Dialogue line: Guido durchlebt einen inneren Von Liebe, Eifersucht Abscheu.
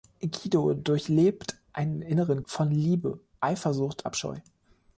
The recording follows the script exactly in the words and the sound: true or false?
true